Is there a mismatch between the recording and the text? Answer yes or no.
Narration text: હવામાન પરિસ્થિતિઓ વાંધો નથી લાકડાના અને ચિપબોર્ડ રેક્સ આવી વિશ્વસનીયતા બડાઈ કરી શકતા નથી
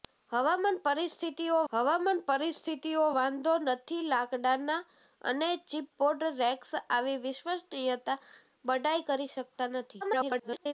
yes